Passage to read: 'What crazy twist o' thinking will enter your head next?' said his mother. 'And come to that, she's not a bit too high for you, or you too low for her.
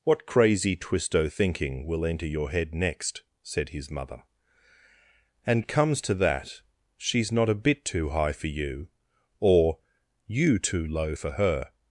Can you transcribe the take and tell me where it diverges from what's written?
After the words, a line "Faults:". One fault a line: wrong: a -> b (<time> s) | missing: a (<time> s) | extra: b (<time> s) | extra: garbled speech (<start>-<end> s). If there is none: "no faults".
'What crazy twist o' thinking will enter your head next?' said his mother. 'And comes to that, she's not a bit too high for you, or you too low for her.
Faults:
wrong: come -> comes (5.7 s)